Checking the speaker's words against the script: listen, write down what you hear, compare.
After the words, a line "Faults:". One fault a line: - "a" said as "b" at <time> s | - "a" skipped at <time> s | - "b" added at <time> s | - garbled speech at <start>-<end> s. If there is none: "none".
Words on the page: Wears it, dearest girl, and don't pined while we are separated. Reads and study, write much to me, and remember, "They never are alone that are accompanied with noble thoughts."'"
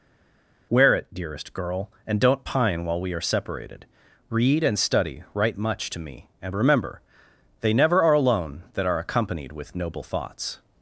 Wear it, dearest girl, and don't pine while we are separated. Read and study, write much to me, and remember, "They never are alone that are accompanied with noble thoughts."'"
Faults:
- "Wears" said as "Wear" at 0.7 s
- "pined" said as "pine" at 2.4 s
- "Reads" said as "Read" at 4.3 s